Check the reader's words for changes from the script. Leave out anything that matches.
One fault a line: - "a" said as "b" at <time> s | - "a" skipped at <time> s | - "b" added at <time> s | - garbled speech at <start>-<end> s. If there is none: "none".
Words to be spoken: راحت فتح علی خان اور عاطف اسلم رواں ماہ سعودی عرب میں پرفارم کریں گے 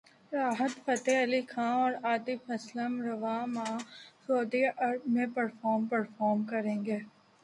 - "پرفارم" added at 5.9 s